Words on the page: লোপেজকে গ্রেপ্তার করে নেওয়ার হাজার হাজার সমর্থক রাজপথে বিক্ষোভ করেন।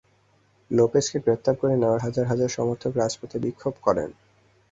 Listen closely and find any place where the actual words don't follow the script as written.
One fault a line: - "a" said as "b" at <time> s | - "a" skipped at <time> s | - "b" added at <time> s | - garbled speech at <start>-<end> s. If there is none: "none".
none